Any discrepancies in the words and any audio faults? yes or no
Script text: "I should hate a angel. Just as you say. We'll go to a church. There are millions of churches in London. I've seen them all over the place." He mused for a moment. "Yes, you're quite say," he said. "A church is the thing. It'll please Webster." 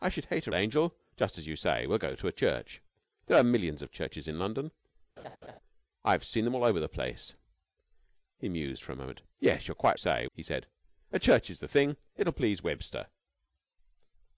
yes